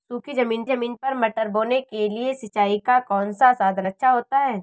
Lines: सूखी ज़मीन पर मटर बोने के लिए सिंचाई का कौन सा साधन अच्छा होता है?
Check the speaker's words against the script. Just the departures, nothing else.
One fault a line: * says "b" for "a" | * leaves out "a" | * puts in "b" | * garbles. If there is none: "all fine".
* puts in "ज़मीन"